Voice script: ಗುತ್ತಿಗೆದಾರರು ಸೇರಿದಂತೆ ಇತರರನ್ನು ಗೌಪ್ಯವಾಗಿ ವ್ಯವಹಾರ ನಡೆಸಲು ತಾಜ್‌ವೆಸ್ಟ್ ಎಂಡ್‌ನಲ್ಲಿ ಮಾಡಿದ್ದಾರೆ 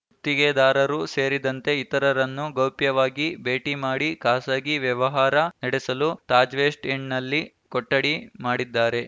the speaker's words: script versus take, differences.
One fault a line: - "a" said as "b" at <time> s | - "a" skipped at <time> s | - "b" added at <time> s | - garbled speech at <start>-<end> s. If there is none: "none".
- "ಭೇಟಿ ಮಾಡಿ ಖಾಸಗಿ" added at 3.4 s
- "ಕೊಠಡಿ" added at 7.7 s